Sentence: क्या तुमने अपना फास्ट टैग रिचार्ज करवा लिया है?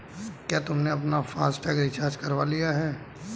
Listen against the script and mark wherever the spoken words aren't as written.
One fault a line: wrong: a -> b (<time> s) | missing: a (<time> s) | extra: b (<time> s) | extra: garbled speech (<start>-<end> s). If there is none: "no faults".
no faults